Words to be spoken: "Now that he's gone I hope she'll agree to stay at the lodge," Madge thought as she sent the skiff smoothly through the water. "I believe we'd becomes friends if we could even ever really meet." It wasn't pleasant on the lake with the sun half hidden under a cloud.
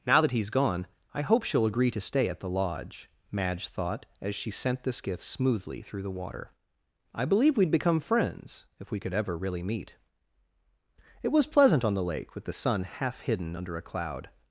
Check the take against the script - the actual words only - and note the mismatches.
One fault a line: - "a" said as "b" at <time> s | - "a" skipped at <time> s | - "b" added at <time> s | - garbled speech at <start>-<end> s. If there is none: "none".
- "becomes" said as "become" at 7.7 s
- "even" skipped at 9.1 s
- "wasn't" said as "was" at 11.3 s